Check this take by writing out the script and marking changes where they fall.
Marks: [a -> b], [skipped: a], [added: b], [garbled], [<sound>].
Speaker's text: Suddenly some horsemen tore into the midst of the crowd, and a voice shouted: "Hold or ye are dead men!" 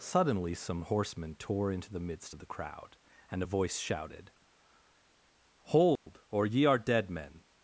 Suddenly some horsemen tore into the midst of the crowd, and a voice shouted: "Hold [dropout] or ye are dead men!"